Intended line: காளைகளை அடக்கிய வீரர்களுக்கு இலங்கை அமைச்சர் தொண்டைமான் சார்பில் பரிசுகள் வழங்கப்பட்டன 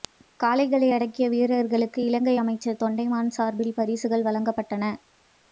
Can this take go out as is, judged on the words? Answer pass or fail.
pass